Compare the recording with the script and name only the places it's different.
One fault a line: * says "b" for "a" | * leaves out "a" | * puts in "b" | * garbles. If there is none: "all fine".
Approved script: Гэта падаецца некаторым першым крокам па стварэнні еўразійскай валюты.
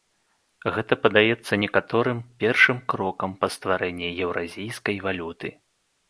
all fine